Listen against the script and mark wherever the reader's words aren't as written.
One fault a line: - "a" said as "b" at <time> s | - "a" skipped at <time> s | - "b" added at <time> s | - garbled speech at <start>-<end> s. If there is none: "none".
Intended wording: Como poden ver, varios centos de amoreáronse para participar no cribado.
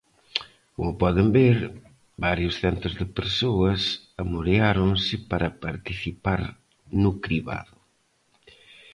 - "persoas" added at 3.2 s